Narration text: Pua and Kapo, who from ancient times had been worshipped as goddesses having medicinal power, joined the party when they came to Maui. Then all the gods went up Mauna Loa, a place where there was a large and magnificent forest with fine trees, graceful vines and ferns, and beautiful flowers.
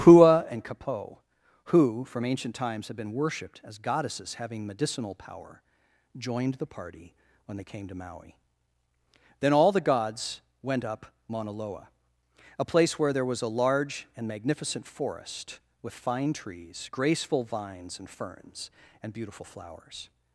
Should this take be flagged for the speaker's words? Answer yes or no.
no